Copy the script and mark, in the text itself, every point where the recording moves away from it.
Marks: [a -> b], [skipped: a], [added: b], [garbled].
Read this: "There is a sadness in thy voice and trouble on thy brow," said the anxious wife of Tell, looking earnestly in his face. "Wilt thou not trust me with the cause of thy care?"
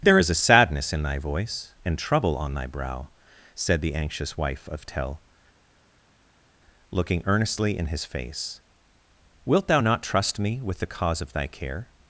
"There is a sadness in thy voice and trouble on thy brow," said the anxious wife of Tell, looking earnestly in his face. "Wilt thou not trust me with the cause of thy care?"